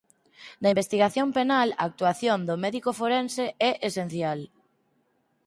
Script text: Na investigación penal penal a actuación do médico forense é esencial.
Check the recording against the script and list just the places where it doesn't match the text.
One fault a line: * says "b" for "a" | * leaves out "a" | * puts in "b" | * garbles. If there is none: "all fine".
* leaves out "penal"